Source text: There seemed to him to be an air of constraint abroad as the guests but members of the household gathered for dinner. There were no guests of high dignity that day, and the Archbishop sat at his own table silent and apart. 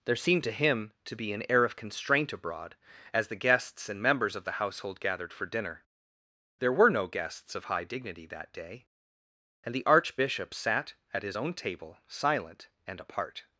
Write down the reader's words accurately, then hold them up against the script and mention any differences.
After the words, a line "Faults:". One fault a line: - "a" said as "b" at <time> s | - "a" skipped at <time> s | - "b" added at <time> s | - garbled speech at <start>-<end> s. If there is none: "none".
There seemed to him to be an air of constraint abroad as the guests and members of the household gathered for dinner. There were no guests of high dignity that day, and the Archbishop sat at his own table silent and apart.
Faults:
- "but" said as "and" at 3.9 s